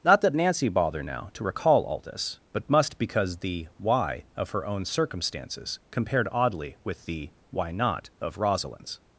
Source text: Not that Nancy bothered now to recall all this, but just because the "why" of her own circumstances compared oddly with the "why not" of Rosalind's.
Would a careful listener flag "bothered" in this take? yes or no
yes